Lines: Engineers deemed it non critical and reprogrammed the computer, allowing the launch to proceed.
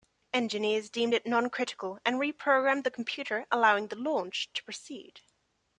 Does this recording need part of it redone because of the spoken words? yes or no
no